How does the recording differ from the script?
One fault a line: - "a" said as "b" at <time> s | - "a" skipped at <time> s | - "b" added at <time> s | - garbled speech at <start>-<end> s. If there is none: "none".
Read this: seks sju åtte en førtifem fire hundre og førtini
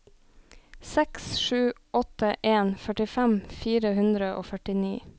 none